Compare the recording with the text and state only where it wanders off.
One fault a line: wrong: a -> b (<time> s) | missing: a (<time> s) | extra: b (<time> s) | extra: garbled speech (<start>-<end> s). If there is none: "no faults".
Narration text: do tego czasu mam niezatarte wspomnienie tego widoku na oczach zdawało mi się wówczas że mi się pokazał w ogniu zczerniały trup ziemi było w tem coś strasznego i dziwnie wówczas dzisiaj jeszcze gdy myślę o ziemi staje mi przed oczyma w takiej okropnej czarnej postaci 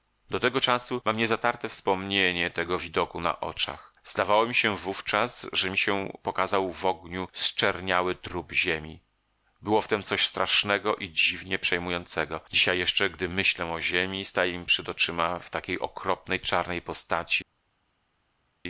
wrong: wówczas -> przejmującego (11.6 s)